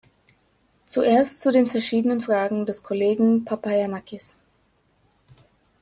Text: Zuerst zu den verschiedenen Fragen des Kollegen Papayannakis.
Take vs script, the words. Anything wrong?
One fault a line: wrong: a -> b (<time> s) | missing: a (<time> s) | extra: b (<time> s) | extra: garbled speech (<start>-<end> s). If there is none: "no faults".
no faults